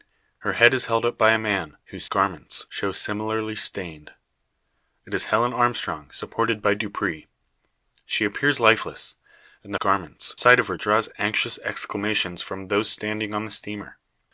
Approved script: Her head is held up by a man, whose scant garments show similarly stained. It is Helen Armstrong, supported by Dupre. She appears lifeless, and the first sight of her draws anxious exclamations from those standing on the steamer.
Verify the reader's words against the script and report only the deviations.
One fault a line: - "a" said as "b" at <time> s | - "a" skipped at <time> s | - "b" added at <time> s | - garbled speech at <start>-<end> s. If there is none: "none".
- "scant" skipped at 2.1 s
- "first" said as "garments" at 9.8 s